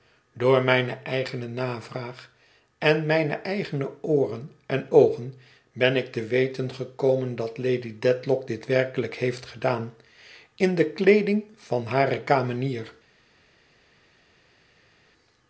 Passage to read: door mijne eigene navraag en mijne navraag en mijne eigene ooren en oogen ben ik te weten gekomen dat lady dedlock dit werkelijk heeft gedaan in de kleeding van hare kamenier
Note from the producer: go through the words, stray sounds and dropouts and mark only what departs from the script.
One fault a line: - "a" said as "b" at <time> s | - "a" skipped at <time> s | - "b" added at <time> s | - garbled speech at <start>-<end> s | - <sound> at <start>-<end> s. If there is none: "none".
- "navraag en mijne" skipped at 3.3 s